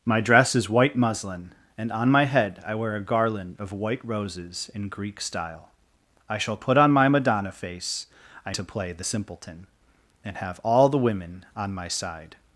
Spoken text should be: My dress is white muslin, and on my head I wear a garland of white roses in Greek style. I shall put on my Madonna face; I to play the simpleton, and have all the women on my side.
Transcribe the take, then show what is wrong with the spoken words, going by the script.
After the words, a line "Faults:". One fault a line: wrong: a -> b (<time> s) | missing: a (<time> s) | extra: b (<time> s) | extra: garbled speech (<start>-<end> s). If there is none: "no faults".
My dress is white muslin, and on my head I wear a garland of white roses in Greek style. I shall put on my Madonna face; I to play the simpleton, and have all the women on my side.
Faults:
no faults